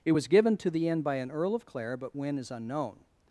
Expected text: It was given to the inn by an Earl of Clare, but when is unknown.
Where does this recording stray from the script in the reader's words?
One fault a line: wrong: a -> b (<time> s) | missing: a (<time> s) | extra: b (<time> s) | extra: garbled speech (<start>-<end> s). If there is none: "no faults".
no faults